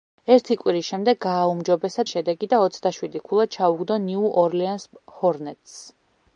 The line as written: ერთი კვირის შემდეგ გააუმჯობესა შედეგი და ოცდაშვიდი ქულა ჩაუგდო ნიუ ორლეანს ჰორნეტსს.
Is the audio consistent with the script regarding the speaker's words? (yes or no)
yes